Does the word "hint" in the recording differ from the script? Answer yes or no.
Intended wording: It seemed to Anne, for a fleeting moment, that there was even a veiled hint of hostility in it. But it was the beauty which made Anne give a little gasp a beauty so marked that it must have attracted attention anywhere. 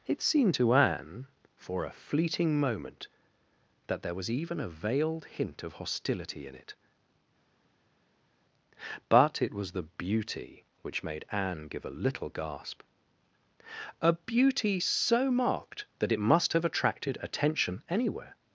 no